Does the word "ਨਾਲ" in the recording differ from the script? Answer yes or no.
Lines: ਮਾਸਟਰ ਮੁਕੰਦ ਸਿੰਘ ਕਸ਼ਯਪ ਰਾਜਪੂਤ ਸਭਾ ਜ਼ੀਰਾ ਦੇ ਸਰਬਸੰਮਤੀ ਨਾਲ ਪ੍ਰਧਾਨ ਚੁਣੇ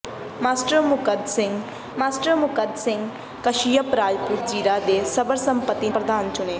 yes